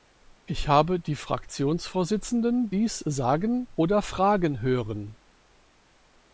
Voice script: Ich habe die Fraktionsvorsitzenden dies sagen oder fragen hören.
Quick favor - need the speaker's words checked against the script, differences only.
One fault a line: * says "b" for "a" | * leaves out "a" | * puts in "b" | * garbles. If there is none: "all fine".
all fine